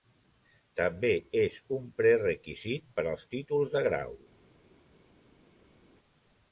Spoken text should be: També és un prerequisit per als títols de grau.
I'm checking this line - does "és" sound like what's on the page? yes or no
yes